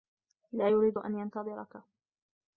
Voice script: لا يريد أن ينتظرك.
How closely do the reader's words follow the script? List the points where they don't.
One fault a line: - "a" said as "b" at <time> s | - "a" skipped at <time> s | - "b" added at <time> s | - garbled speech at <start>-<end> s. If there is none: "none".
none